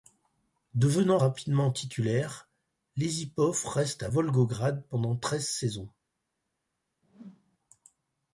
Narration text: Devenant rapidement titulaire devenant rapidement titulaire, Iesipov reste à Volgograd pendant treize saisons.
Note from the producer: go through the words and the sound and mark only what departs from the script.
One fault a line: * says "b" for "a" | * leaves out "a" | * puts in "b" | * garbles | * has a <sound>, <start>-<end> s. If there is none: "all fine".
* leaves out "devenant rapidement titulaire"
* has a whoosh, 7.0-7.6 s